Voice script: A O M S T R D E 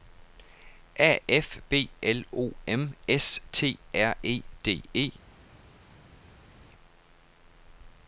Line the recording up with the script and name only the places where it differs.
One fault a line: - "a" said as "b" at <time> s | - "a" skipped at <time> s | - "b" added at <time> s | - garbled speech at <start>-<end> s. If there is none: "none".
- "F B L" added at 1.3 s
- "E" added at 4.2 s